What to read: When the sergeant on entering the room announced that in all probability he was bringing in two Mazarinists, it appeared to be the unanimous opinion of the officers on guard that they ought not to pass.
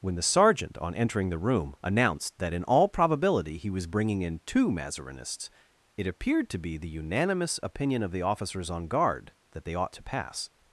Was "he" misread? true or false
false